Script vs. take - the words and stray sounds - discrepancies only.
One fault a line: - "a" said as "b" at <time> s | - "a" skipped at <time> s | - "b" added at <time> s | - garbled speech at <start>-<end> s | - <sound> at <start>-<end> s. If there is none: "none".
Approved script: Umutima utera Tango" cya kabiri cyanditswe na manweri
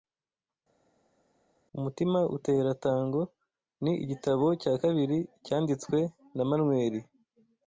- "ni igitabo" added at 3.8 s